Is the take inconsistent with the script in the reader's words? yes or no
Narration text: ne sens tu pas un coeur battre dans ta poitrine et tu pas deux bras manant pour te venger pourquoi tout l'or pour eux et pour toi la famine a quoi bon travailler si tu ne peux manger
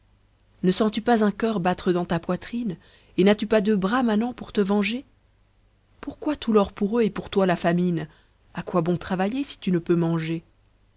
yes